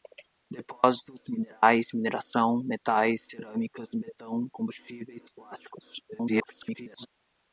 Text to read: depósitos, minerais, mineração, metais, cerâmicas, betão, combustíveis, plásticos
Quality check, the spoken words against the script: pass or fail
fail